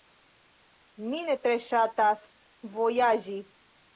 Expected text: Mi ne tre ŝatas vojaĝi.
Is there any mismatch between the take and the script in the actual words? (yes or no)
no